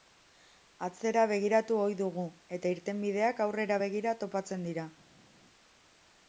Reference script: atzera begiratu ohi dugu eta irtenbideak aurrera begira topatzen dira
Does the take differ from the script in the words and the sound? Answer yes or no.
no